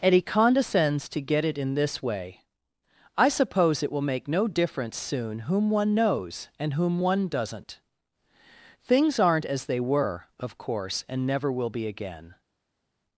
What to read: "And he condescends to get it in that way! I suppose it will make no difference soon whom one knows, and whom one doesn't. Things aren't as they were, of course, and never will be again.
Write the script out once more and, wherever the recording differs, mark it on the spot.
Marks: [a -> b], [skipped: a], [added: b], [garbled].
"And he condescends to get it in [that -> this] way! I suppose it will make no difference soon whom one knows, and whom one doesn't. Things aren't as they were, of course, and never will be again.